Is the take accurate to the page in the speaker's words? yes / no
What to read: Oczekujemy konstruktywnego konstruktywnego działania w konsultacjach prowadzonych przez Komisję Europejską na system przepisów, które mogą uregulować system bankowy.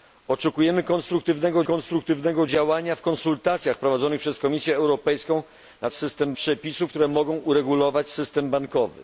yes